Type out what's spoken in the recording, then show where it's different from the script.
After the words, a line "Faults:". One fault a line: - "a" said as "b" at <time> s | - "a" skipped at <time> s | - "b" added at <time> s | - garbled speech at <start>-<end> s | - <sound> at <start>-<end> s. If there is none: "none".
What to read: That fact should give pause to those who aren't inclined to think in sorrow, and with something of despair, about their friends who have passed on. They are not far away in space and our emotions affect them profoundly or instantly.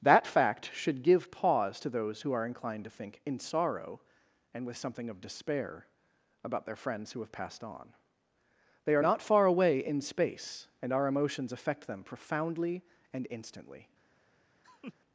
That fact should give pause to those who are inclined to think in sorrow, and with something of despair, about their friends who have passed on. They are not far away in space and our emotions affect them profoundly and instantly.
Faults:
- "aren't" said as "are" at 2.3 s
- "or" said as "and" at 13.1 s
- laugh at 14.6-14.9 s